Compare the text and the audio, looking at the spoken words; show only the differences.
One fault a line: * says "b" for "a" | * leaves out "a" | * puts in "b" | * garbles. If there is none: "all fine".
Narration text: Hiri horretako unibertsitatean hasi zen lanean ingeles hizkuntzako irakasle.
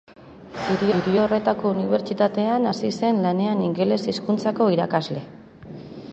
* puts in "hiri"